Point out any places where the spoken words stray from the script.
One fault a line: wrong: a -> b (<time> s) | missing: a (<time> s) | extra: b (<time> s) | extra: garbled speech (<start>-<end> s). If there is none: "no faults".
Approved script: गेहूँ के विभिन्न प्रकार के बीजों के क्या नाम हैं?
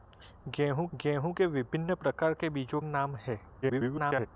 extra: गेहूँ (0.9 s)
missing: के क्या (2.8 s)
extra: garbled speech (3.6-4.3 s)